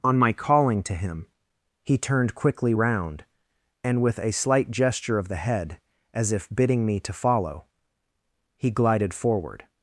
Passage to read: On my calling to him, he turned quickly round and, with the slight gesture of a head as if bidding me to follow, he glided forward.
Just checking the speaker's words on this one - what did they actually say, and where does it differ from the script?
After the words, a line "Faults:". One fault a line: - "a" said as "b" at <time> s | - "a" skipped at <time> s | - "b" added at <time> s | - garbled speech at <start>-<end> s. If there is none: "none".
On my calling to him, he turned quickly round and, with a slight gesture of the head as if bidding me to follow, he glided forward.
Faults:
- "the" said as "a" at 4.2 s
- "a" said as "the" at 5.3 s